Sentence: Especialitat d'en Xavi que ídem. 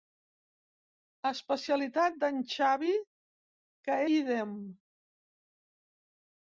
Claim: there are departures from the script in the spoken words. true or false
false